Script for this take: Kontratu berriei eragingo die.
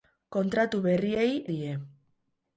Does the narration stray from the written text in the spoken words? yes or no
yes